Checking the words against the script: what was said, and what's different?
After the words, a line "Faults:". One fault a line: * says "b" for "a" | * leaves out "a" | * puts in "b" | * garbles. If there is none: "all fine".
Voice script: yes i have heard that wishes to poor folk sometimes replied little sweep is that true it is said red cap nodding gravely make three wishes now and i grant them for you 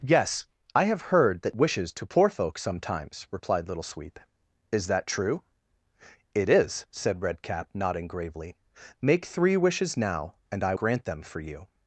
yes i have heard that wishes to poor folk sometimes replied little sweep is that true it is said red cap nodding gravely make three wishes now and i grant them for you
Faults:
all fine